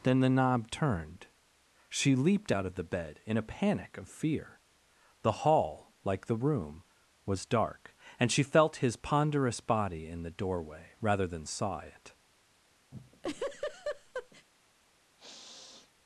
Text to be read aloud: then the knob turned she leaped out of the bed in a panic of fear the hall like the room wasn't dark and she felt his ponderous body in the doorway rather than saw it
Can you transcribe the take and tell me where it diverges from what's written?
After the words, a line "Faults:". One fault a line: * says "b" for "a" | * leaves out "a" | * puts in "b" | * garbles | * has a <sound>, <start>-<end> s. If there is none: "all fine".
then the knob turned she leaped out of the bed in a panic of fear the hall like the room was dark and she felt his ponderous body in the doorway rather than saw it
Faults:
* says "was" for "wasn't"
* has a laugh, 12.9-14.5 s
* has a sniff, 15.2-15.9 s